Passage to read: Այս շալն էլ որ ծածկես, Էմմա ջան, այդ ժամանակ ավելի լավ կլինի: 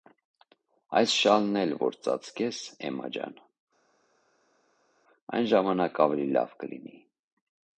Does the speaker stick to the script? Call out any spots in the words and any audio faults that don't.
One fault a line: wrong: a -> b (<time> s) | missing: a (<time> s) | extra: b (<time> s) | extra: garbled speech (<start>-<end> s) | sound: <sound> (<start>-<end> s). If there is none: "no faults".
wrong: այդ -> այն (5.4 s)